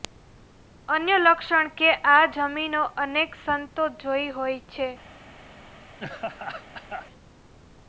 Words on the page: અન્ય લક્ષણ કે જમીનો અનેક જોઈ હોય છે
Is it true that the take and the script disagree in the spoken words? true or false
true